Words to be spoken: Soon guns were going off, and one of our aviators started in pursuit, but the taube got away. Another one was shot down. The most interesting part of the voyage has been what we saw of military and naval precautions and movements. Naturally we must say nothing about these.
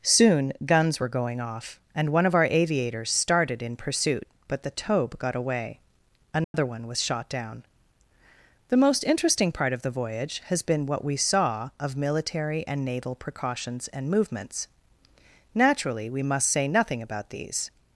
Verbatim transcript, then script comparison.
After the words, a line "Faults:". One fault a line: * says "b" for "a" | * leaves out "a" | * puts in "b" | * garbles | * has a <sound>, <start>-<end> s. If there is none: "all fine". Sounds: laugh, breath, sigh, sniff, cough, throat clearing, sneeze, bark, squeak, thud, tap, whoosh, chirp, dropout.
Soon guns were going off, and one of our aviators started in pursuit, but the taube got away. Another one was shot down. The most interesting part of the voyage has been what we saw of military and naval precautions and movements. Naturally we must say nothing about these.
Faults:
* has a dropout, 6.4-6.5 s